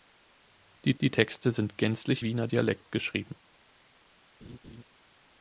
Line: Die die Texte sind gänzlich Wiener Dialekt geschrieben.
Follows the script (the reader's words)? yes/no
yes